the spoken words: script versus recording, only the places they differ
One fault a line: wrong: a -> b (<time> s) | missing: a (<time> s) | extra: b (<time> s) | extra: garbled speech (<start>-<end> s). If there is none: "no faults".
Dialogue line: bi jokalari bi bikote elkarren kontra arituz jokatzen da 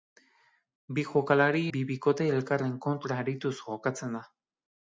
no faults